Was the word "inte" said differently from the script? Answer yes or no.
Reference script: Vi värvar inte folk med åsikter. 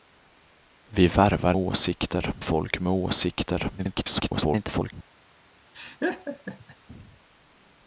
yes